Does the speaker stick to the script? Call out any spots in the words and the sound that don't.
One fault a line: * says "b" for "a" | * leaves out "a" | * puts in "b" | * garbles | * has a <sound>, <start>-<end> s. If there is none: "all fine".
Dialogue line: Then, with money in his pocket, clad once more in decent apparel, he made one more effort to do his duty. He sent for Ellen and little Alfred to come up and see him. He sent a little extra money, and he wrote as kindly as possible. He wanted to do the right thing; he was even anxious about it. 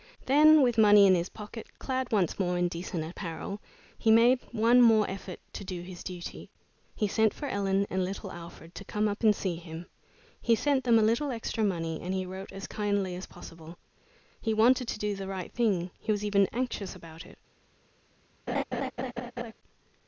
* puts in "them"
* has a laugh, 18.5-19.5 s